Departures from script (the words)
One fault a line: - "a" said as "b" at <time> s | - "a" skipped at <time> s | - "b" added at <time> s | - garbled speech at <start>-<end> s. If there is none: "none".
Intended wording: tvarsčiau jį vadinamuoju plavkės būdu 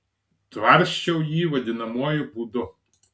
- "plavkės" skipped at 2.2 s